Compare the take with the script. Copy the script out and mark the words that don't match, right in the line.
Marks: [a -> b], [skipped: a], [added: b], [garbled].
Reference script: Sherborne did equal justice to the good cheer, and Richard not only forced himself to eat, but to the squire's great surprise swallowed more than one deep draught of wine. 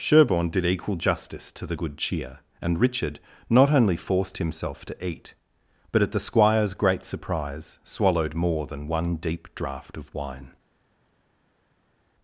Sherborne did equal justice to the good cheer, and Richard not only forced himself to eat, but [to -> at] the squire's great surprise swallowed more than one deep draught of wine.